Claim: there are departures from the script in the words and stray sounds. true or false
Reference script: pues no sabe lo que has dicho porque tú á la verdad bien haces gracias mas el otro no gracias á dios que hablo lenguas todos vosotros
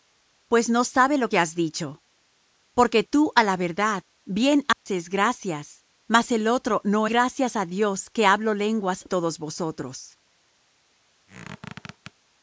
true